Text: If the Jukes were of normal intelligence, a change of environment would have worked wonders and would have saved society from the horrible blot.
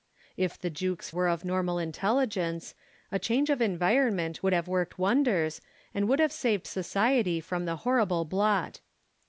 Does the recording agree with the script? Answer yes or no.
yes